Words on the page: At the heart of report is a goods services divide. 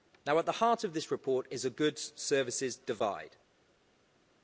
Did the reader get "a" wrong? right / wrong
right